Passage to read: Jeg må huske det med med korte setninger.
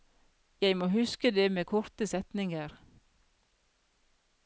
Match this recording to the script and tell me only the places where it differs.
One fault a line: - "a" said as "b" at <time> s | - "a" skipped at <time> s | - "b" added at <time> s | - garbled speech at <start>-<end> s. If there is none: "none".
- "med" skipped at 1.6 s